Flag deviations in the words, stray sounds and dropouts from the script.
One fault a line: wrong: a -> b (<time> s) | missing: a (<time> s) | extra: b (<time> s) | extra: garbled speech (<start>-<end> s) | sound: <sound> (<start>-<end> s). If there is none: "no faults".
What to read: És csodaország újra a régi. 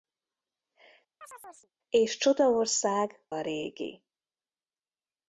sound: chirp (1.2-1.7 s)
missing: újra (3.3 s)